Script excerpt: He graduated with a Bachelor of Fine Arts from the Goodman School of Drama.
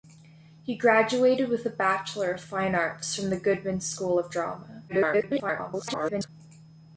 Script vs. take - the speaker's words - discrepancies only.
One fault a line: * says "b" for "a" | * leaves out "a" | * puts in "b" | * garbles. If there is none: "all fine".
* garbles